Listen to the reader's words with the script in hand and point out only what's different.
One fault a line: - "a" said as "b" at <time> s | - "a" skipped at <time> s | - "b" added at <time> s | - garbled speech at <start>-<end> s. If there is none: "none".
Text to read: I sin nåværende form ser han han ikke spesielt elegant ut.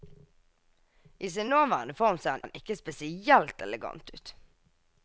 none